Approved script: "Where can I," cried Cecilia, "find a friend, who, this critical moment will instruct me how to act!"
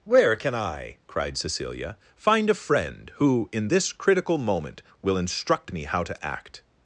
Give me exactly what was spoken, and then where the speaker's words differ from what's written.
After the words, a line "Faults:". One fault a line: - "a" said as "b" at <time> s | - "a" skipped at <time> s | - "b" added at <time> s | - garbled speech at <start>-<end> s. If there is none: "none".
"Where can I," cried Cecilia, "find a friend, who, in this critical moment will instruct me how to act!"
Faults:
- "in" added at 3.5 s